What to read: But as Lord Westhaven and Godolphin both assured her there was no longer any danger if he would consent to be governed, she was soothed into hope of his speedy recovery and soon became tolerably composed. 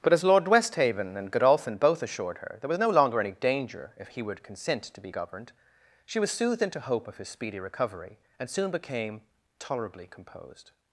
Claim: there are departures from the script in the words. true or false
false